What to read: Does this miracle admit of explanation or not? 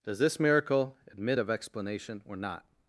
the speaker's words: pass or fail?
pass